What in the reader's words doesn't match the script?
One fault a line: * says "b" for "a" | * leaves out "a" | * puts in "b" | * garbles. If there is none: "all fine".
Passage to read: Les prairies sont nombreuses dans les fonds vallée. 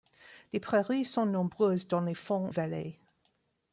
all fine